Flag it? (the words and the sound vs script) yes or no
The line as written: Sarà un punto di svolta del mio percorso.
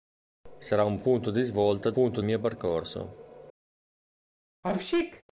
yes